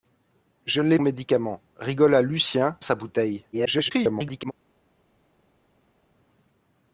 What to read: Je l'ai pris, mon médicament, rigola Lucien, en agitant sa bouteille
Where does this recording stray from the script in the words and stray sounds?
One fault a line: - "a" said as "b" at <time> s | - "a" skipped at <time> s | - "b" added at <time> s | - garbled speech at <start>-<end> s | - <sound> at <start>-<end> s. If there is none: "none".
- "pris mon" skipped at 1.0 s
- "en agitant" skipped at 2.8 s
- garbled speech at 3.5-4.5 s